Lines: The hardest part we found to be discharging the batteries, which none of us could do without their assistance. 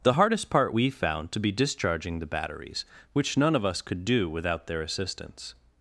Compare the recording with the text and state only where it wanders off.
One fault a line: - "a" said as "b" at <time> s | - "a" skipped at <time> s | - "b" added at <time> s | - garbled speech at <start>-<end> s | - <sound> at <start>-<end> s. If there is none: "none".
none